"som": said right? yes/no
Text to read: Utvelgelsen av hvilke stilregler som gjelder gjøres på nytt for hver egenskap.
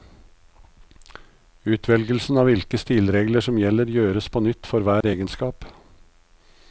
yes